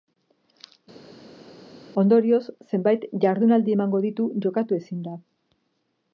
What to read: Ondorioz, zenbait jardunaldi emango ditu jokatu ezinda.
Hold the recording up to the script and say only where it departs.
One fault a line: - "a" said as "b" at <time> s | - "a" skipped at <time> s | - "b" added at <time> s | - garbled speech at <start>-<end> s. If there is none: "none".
none